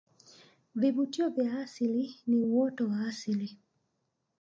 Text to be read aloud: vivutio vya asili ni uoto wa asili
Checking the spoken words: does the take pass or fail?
pass